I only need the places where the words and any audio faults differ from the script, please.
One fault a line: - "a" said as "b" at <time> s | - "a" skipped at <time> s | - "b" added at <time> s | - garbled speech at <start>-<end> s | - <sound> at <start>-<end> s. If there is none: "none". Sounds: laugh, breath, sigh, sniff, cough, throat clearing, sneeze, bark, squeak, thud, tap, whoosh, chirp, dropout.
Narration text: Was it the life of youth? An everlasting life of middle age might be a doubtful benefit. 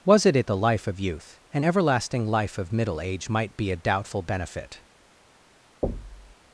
- "it" added at 0.3 s
- thud at 5.8-6.4 s